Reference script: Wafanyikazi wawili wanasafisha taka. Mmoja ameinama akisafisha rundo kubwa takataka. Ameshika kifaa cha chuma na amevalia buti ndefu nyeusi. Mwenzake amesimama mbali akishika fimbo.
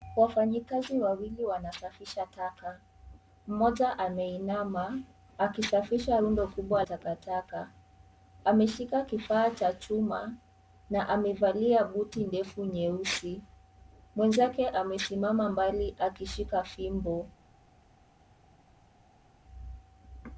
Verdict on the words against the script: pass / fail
pass